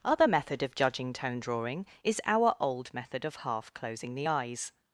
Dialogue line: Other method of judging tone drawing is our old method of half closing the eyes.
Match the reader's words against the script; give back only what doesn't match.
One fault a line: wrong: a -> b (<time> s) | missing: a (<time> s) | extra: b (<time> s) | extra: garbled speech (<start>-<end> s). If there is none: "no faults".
no faults